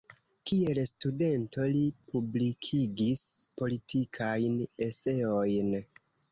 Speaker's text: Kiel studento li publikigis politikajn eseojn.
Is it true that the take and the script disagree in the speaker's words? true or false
false